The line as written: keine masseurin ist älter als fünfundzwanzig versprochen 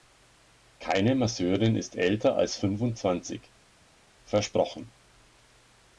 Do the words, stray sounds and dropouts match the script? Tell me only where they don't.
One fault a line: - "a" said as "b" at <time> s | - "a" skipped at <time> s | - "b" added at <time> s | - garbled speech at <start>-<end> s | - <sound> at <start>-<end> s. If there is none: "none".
none